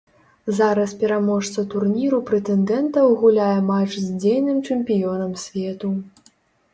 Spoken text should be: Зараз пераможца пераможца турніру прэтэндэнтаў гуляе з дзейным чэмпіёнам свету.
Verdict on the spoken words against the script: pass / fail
fail